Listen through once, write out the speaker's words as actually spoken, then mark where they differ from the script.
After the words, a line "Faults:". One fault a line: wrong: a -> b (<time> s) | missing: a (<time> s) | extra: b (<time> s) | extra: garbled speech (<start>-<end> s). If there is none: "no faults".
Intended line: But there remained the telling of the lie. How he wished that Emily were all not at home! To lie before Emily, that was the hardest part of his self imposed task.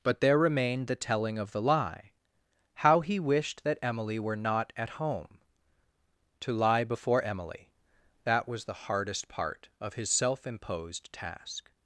But there remained the telling of the lie. How he wished that Emily were not at home! To lie before Emily, that was the hardest part of his self imposed task.
Faults:
missing: all (4.3 s)